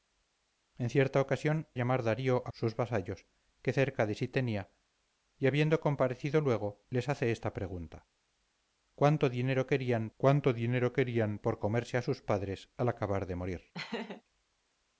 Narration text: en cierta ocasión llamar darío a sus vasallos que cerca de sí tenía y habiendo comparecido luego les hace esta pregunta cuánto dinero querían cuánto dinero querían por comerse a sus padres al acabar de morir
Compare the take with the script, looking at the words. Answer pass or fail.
pass